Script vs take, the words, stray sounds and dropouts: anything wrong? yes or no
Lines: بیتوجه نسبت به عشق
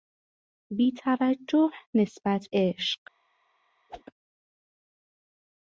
yes